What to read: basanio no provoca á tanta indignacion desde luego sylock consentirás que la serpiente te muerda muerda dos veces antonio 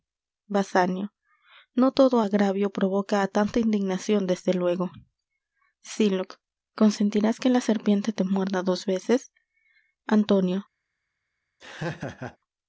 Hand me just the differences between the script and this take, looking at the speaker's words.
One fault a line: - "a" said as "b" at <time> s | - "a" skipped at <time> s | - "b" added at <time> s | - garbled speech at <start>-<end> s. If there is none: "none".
- "todo agravio" added at 2.0 s
- "muerda" skipped at 8.6 s